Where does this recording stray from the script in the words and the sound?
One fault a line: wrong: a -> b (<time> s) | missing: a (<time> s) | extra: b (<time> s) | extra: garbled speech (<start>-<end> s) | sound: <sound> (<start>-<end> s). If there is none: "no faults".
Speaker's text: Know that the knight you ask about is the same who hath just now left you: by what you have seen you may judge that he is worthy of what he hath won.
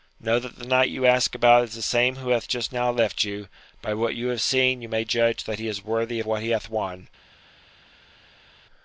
missing: of (6.2 s)